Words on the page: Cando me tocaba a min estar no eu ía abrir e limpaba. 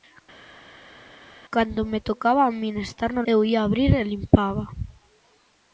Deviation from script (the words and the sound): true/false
false